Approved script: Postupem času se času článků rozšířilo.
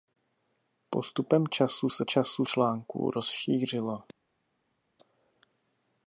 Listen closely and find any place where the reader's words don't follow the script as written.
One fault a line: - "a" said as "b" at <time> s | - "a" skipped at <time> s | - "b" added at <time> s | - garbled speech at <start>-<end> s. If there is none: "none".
none